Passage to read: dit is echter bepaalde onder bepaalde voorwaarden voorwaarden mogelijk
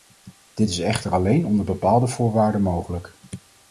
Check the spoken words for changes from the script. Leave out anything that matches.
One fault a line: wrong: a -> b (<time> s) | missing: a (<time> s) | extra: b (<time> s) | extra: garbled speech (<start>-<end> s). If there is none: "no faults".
wrong: bepaalde -> alleen (1.1 s)
missing: voorwaarden (2.6 s)